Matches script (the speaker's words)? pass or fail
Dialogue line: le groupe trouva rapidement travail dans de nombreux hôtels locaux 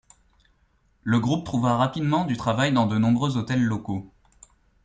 fail